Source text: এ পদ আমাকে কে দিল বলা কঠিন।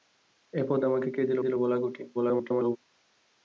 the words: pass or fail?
fail